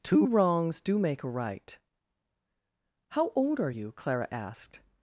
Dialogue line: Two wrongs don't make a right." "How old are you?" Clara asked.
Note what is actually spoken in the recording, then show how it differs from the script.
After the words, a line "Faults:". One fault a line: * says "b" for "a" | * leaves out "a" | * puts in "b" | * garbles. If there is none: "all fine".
Two wrongs do make a right." "How old are you?" Clara asked.
Faults:
* says "do" for "don't"